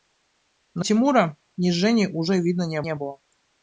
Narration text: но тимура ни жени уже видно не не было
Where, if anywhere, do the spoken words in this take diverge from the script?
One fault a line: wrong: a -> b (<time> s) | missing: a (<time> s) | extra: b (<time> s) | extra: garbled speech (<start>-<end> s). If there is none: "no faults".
no faults